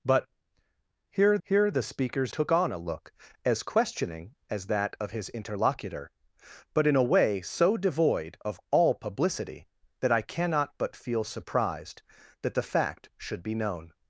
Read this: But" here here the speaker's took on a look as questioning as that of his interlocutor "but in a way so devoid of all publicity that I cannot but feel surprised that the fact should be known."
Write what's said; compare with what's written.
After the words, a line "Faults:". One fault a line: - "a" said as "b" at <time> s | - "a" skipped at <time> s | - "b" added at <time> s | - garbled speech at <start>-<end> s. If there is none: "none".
But" here here the speaker's took on a look as questioning as that of his interlocutor "but in a way so devoid of all publicity that I cannot but feel surprised that the fact should be known."
Faults:
none